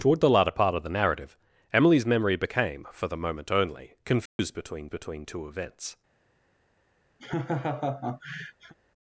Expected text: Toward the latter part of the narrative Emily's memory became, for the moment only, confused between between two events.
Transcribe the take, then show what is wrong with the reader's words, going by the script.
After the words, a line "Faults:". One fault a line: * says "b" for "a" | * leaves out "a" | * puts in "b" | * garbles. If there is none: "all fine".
Toward the latter part of the narrative Emily's memory became, for the moment only, confused between between two events.
Faults:
all fine